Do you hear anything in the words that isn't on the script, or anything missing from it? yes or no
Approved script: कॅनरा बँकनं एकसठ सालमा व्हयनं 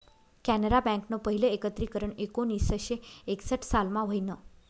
yes